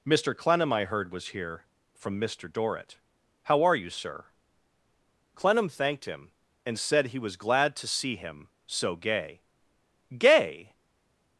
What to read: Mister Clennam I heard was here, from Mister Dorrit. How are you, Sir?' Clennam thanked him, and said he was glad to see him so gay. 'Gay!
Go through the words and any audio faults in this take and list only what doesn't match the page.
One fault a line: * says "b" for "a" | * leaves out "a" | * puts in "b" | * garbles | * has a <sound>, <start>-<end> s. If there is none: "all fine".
all fine